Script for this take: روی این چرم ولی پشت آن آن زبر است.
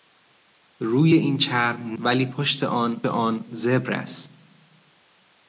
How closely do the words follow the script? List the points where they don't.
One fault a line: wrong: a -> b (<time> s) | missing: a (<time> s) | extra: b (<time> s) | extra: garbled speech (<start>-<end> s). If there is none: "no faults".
no faults